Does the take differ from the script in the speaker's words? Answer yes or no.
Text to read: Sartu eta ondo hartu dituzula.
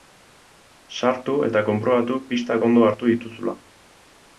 yes